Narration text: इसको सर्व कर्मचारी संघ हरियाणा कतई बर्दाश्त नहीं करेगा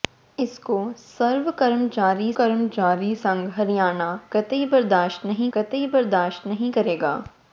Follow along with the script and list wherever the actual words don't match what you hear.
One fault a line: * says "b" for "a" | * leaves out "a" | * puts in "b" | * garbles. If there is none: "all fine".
* puts in "कर्मचारी"
* puts in "कतई बर्दाश्त नहीं"